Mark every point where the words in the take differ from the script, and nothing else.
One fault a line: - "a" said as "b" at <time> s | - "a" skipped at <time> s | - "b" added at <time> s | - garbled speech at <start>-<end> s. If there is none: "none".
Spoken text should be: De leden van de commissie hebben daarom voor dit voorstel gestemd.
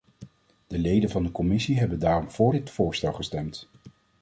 none